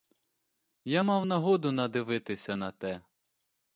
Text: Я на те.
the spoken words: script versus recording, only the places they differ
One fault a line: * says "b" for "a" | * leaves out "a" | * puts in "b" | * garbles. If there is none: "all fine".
* puts in "мав нагоду надивитися"